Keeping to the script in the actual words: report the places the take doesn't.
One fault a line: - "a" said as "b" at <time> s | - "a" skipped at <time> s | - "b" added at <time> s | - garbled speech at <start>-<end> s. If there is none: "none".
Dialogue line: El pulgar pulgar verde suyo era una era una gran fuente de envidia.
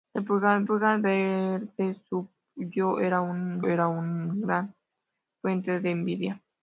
none